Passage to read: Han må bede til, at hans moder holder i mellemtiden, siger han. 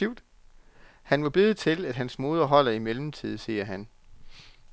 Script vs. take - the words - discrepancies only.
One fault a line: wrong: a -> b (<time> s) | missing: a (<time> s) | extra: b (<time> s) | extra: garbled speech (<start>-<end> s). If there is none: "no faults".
no faults